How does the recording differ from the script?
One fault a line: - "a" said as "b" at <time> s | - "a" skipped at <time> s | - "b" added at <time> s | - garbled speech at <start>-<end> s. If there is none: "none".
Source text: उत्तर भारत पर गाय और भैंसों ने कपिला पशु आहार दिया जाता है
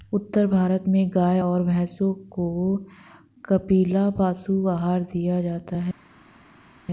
- "पर" said as "में" at 0.9 s
- "ने" said as "को" at 2.3 s